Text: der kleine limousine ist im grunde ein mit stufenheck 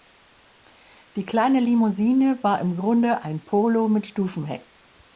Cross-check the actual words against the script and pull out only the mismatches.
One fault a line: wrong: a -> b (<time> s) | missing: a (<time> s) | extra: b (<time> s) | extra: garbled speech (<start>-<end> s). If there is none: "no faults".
wrong: der -> die (1.1 s)
wrong: ist -> war (2.4 s)
extra: polo (3.5 s)